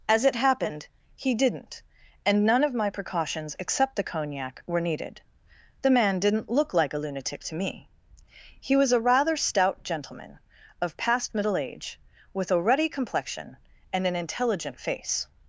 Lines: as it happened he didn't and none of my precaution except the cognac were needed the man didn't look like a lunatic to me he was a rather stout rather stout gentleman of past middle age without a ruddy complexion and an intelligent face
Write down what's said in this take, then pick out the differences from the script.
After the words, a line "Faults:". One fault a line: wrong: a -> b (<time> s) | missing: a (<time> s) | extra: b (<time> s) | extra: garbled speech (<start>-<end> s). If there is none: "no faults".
as it happened he didn't and none of my precautions except the cognac were needed the man didn't look like a lunatic to me he was a rather stout gentleman of past middle age with a ruddy complexion and an intelligent face
Faults:
wrong: precaution -> precautions (2.9 s)
missing: rather stout (9.8 s)
wrong: without -> with (12.3 s)